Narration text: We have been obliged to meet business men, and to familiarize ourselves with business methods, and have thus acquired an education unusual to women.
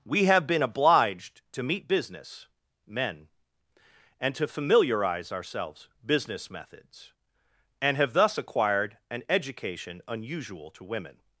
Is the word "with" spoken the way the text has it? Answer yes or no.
no